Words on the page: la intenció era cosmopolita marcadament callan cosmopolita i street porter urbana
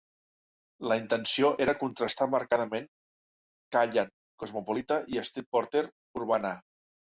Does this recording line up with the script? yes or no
no